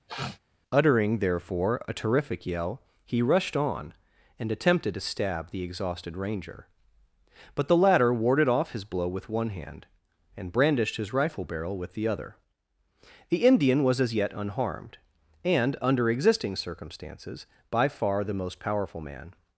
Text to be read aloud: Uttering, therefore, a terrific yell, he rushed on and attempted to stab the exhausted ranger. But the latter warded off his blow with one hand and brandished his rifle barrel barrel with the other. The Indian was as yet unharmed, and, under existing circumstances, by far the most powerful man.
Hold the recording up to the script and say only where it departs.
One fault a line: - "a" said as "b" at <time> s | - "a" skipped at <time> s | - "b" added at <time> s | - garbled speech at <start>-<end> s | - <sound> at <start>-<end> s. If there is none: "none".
- sniff at 0.1-0.4 s
- "barrel" skipped at 11.8 s